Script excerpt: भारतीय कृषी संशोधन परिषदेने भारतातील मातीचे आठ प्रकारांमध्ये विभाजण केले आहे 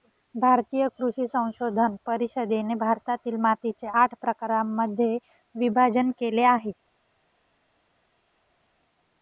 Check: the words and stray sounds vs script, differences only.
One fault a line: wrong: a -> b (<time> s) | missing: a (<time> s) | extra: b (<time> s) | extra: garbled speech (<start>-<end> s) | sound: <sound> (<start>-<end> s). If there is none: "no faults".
no faults